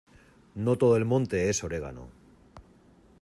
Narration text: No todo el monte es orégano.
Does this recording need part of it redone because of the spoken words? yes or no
no